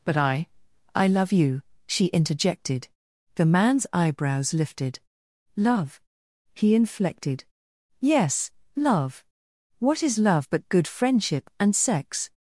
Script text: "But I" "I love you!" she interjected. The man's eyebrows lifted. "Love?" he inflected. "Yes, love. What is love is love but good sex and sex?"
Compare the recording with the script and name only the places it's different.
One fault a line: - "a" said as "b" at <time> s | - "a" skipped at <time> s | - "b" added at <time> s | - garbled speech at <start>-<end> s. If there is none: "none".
- "is love" skipped at 10.5 s
- "sex" said as "friendship" at 10.9 s